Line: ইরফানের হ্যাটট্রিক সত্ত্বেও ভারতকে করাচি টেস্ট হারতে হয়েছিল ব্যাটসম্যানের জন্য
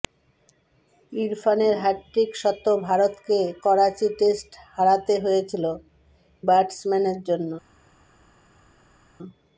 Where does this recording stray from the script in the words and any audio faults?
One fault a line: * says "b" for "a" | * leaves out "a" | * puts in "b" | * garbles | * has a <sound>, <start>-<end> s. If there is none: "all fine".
all fine